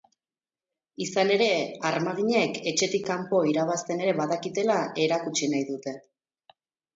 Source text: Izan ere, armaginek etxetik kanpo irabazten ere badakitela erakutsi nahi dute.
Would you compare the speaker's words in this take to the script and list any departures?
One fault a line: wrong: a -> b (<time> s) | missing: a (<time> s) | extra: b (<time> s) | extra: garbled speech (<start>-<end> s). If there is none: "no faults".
no faults